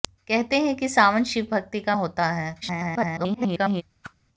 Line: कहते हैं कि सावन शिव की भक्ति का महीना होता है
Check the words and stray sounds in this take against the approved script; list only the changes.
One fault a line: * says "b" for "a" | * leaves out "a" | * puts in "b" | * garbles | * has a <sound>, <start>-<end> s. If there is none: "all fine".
* leaves out "की"
* leaves out "महीना"
* garbles
* has a whoosh, 4.0-4.1 s